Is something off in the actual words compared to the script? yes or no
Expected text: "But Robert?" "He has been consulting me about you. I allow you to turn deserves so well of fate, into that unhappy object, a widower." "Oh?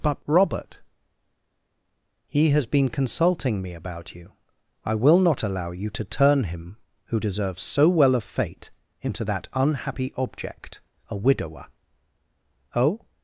yes